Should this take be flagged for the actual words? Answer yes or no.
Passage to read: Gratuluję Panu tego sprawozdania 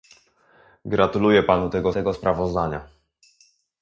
yes